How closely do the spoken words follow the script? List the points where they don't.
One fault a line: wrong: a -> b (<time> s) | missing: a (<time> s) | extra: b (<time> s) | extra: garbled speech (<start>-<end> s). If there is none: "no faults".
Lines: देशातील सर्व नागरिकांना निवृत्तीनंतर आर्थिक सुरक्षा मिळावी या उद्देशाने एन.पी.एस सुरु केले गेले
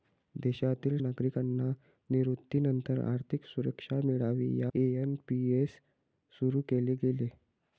missing: सर्व (1.0 s)
missing: उद्देशाने (4.7 s)